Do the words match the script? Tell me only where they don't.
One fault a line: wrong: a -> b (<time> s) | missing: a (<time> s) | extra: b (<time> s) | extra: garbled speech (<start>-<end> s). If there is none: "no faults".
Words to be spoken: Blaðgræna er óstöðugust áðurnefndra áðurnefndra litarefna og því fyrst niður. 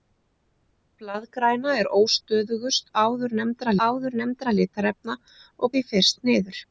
no faults